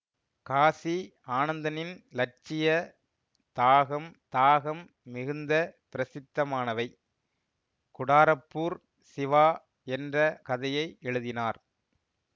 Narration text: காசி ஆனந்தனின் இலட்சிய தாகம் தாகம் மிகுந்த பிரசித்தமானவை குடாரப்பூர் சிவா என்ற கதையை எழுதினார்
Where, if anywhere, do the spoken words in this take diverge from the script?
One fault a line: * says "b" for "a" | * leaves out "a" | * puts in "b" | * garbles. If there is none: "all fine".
all fine